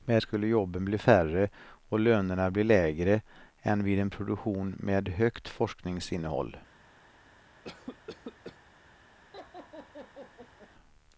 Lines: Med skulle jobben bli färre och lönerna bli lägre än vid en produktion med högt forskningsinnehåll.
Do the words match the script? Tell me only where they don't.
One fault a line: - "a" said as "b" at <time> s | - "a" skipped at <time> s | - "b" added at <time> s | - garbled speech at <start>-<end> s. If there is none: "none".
none